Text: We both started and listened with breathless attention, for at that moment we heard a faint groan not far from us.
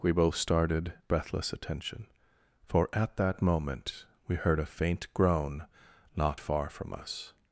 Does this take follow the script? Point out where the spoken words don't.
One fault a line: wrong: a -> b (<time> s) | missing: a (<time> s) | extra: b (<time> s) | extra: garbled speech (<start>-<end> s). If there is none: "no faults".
missing: and listened with (0.9 s)